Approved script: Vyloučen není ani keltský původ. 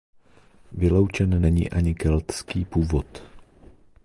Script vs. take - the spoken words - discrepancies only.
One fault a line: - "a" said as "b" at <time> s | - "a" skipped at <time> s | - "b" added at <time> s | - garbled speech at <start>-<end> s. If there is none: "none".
none